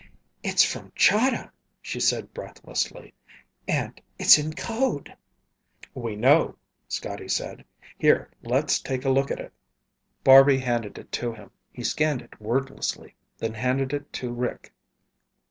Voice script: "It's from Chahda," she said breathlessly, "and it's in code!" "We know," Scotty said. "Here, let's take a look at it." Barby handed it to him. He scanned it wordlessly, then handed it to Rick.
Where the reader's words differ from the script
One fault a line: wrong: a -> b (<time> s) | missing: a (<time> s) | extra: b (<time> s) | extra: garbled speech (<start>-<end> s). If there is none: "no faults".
no faults